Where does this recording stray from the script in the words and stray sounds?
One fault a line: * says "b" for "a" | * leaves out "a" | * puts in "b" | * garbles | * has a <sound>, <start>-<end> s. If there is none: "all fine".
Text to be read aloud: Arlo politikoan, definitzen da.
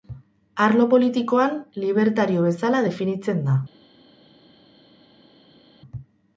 * puts in "libertario bezala"